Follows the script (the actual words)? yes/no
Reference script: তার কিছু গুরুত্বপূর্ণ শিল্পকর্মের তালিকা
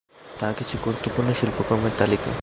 yes